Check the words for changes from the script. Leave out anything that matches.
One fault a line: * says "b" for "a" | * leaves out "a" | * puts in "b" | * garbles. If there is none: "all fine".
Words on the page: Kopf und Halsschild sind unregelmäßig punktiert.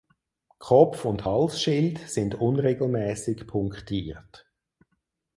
all fine